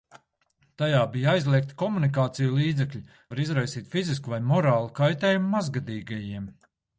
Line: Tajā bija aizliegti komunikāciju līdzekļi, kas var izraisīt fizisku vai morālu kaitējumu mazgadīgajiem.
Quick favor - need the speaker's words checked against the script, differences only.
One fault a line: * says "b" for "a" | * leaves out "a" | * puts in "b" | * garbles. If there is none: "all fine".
* leaves out "kas"